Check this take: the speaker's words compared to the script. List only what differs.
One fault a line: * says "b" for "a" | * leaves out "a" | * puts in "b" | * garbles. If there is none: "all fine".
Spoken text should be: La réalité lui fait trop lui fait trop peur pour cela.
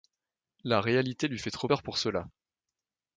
* leaves out "lui fait trop"